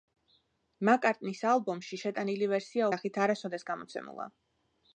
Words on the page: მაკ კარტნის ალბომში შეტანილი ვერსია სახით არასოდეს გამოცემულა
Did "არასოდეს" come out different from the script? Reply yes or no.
no